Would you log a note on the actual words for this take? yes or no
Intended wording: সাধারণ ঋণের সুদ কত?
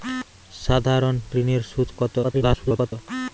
yes